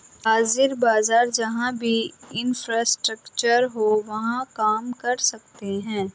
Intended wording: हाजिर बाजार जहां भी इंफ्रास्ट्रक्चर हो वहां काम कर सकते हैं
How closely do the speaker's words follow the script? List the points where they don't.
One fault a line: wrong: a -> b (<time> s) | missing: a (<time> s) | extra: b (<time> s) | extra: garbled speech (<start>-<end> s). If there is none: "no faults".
no faults